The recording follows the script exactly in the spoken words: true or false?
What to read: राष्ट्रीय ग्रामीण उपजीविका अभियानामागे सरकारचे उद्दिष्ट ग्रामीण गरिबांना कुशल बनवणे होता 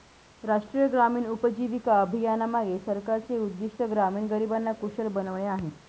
false